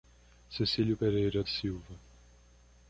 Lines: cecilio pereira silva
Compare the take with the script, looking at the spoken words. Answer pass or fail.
pass